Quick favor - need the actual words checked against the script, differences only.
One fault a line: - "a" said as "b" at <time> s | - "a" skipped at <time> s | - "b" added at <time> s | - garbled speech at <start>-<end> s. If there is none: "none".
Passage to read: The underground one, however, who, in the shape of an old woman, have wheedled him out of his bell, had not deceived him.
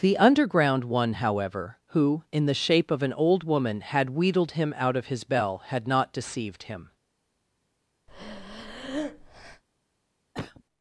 - "have" said as "had" at 3.8 s